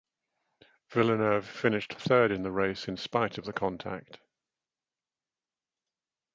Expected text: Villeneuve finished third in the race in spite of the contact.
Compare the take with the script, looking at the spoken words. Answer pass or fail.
pass